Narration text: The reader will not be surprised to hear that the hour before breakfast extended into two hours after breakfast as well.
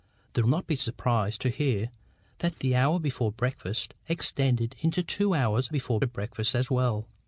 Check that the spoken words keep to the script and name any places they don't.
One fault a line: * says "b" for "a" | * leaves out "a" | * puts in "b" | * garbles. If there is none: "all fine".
* leaves out "reader will"
* says "before" for "after"